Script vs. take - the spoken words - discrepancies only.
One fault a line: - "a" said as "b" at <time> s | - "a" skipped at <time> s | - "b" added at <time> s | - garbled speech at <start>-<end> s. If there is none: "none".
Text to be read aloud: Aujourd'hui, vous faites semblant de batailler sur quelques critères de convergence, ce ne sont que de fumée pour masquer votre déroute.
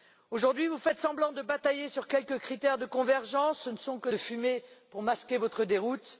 none